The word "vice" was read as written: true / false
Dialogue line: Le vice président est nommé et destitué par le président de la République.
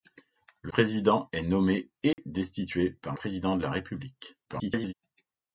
false